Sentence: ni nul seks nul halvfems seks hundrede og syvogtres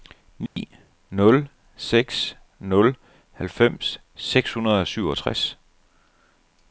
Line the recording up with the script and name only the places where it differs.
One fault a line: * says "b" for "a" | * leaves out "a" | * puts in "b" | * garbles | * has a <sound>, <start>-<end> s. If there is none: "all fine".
* has a dropout, 0.5-0.6 s